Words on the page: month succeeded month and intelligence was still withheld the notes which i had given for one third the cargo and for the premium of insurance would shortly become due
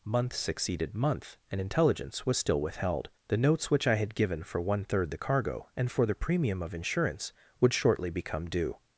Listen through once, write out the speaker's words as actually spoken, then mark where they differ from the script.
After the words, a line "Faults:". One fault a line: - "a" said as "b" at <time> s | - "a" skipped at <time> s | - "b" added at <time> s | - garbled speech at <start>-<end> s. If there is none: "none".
month succeeded month and intelligence was still withheld the notes which i had given for one third the cargo and for the premium of insurance would shortly become due
Faults:
none